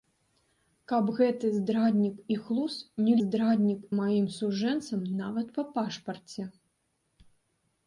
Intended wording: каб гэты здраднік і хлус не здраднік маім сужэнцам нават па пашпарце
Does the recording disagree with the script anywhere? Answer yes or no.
no